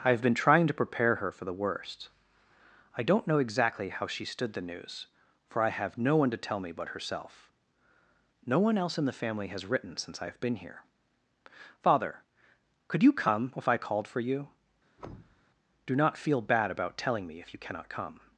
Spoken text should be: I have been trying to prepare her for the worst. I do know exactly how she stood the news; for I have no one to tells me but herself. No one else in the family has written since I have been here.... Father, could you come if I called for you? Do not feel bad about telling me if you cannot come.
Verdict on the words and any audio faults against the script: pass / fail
fail